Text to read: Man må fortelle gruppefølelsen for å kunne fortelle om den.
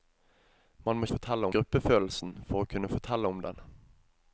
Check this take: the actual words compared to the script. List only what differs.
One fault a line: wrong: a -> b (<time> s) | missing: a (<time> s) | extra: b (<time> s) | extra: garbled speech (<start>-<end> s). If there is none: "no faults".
no faults